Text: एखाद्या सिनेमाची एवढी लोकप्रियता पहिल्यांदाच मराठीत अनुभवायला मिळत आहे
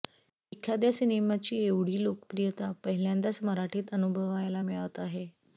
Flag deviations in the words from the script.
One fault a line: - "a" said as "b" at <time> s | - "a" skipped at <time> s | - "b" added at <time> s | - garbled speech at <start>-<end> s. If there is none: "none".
none